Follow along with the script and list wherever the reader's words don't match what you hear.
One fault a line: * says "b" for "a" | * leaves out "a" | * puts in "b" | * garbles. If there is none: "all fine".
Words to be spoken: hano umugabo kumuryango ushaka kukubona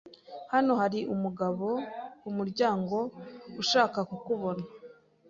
* puts in "hari"